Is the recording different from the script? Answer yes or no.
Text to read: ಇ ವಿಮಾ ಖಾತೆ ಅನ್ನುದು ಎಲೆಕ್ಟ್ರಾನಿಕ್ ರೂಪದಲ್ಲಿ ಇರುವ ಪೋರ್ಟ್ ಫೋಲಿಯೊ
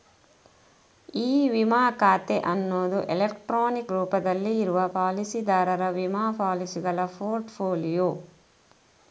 yes